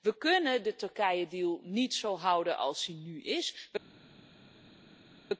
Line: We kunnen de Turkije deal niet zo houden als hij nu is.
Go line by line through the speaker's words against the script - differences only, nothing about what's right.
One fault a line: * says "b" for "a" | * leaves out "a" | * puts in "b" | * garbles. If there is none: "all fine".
all fine